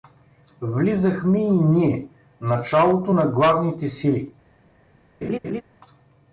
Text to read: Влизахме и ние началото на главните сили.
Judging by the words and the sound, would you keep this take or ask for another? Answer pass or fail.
fail